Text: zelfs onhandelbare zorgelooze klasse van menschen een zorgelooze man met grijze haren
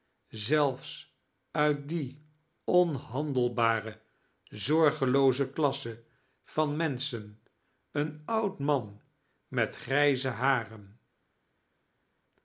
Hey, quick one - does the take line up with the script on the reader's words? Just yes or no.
no